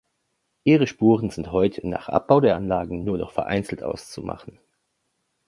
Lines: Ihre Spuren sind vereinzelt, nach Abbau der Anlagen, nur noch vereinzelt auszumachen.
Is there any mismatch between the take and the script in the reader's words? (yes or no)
yes